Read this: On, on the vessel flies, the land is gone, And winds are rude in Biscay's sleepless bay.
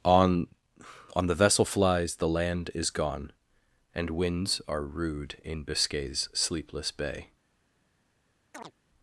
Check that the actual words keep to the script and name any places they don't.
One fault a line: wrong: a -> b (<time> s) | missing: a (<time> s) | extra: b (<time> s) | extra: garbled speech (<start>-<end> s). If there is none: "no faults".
no faults